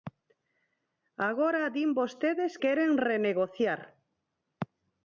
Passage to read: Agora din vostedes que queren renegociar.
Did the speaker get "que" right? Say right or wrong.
wrong